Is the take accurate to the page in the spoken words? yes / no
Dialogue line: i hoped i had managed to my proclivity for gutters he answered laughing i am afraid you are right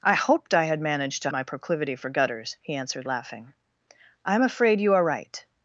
yes